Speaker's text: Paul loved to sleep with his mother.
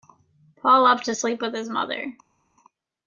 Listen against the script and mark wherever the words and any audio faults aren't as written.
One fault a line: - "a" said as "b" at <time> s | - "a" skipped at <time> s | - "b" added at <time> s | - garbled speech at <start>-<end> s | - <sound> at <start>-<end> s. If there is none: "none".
none